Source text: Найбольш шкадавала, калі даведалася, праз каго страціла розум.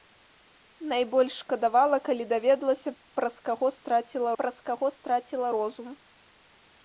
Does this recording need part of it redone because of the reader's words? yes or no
yes